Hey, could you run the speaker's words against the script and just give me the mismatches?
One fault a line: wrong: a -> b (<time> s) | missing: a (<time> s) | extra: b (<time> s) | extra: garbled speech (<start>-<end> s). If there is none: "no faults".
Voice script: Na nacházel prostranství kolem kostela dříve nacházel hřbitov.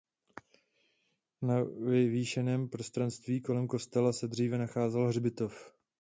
wrong: nacházel -> vyvýšeném (1.6 s)
extra: se (4.1 s)